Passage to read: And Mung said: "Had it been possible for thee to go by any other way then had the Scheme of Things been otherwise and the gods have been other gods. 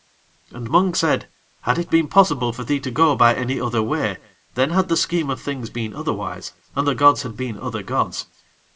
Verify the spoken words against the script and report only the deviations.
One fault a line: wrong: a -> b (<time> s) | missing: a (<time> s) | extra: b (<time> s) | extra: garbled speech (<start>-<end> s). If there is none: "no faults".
wrong: have -> had (7.2 s)